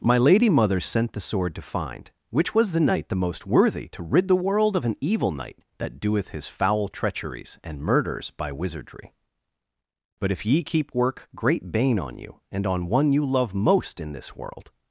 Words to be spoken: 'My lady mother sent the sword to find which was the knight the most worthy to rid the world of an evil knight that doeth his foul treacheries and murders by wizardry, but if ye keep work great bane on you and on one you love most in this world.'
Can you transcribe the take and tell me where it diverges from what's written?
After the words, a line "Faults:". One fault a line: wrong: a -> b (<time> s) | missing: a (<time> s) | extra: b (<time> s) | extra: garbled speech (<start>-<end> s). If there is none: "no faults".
'My lady mother sent the sword to find which was the knight the most worthy to rid the world of an evil knight that doeth his foul treacheries and murders by wizardry, but if ye keep work great bane on you and on one you love most in this world.'
Faults:
no faults